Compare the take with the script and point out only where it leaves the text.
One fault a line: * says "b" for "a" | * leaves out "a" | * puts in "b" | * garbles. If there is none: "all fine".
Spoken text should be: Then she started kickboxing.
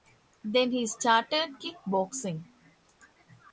* says "he" for "she"